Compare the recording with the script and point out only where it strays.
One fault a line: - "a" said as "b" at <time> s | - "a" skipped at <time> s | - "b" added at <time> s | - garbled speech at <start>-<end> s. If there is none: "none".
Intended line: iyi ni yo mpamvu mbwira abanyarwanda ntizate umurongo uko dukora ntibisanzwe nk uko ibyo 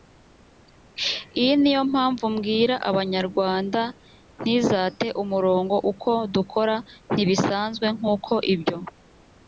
none